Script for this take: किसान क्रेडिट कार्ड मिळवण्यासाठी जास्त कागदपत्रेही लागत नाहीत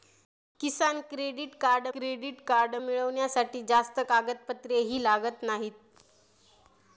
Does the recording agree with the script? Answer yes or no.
no